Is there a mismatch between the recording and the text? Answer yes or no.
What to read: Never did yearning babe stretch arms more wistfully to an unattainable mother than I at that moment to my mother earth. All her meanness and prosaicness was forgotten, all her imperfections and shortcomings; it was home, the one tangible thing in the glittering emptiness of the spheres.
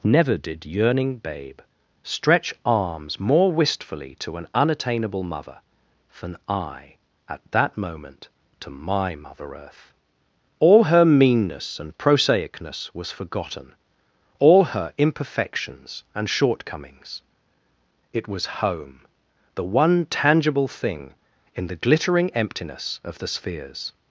no